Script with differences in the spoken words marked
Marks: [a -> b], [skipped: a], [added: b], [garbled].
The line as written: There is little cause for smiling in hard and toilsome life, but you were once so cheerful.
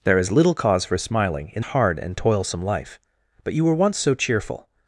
There is little cause for smiling in hard and toilsome life, but you were once so cheerful.